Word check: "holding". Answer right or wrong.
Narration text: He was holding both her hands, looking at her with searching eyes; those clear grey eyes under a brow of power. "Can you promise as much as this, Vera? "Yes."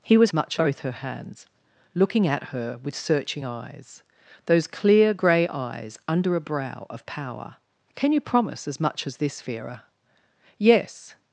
wrong